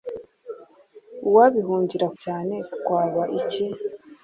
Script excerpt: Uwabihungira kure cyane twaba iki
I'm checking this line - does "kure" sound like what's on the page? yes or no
no